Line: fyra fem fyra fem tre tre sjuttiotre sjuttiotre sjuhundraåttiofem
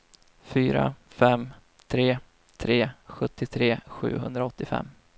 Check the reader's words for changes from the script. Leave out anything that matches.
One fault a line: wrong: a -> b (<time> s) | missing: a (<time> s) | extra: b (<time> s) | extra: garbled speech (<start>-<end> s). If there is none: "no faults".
missing: fyra fem (1.5 s)
missing: sjuttiotre (3.8 s)